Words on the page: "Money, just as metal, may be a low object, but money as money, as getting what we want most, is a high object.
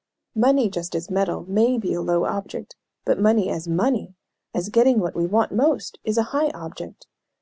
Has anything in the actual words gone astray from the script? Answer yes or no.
no